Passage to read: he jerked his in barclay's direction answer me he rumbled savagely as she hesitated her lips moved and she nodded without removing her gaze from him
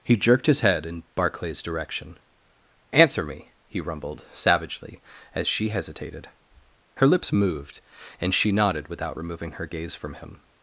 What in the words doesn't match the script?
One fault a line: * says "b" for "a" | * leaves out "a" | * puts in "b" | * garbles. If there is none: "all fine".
* puts in "head"